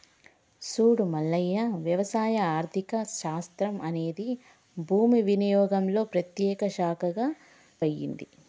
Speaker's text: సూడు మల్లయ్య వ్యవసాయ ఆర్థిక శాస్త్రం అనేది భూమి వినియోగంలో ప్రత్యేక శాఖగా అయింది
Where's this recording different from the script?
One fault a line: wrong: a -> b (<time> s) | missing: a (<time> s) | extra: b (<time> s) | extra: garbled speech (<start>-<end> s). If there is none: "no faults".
no faults